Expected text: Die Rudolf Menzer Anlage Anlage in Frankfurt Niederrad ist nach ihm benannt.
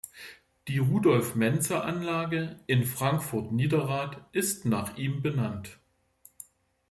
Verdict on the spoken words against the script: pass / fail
fail